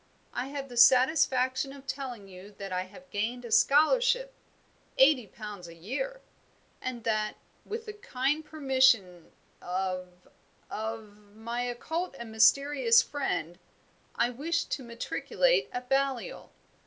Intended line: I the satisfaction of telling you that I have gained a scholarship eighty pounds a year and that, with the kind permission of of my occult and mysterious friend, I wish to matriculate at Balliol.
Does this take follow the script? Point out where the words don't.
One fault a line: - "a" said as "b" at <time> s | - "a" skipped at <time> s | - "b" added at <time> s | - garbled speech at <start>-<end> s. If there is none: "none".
- "have" added at 0.5 s